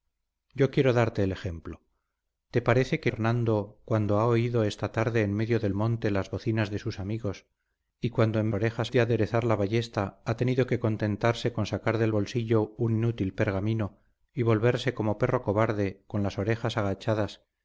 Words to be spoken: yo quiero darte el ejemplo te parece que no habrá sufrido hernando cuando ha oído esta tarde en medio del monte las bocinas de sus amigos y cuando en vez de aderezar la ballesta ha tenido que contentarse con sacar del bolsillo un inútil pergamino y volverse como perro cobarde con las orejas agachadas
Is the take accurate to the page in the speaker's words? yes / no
no